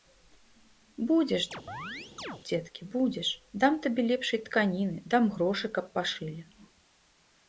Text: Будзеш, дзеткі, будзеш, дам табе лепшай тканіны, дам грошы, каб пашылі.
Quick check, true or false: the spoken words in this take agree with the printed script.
true